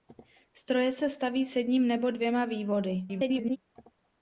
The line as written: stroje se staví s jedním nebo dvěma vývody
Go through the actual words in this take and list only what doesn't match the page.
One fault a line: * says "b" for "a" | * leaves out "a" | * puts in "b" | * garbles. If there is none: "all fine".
* garbles